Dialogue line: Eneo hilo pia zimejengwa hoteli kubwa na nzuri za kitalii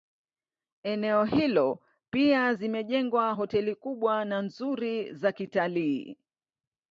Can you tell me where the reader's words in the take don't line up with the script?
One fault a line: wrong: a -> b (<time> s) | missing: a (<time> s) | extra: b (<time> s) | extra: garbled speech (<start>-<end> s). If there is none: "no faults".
no faults